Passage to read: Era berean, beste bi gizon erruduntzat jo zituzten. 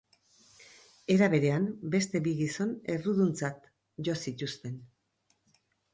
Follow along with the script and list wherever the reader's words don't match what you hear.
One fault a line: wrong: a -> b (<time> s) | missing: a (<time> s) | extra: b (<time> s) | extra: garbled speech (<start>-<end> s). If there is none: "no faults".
no faults